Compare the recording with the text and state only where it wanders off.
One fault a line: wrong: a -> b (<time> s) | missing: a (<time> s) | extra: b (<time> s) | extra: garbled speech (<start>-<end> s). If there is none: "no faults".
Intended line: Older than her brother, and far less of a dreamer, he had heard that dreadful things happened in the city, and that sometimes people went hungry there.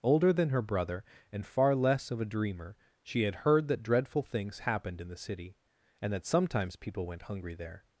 wrong: he -> she (3.0 s)